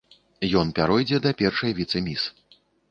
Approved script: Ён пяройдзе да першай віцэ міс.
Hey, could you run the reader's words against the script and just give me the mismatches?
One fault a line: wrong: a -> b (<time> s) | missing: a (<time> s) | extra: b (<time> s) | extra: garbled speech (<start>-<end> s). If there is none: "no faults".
no faults